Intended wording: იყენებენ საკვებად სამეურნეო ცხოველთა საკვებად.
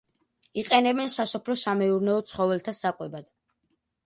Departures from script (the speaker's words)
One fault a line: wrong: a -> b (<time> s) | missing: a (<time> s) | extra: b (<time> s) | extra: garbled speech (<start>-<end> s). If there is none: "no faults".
wrong: საკვებად -> სასოფლო (1.1 s)